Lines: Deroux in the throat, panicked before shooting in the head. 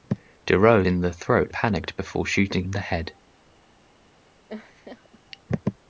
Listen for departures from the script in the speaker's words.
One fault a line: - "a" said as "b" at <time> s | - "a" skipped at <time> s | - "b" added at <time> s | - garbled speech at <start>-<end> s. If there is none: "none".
none